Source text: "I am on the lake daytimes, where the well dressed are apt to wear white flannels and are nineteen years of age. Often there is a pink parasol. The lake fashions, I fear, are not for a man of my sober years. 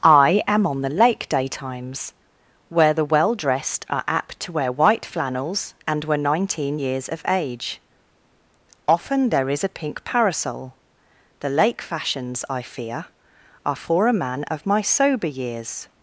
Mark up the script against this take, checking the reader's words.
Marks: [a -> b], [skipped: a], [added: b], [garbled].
"I am on the lake daytimes, where the well dressed are apt to wear white flannels and [are -> were] nineteen years of age. Often there is a pink parasol. The lake fashions, I fear, are [skipped: not] for a man of my sober years.